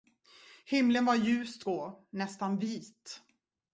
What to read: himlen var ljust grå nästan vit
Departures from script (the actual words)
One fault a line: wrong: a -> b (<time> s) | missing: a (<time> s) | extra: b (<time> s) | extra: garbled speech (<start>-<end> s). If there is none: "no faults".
no faults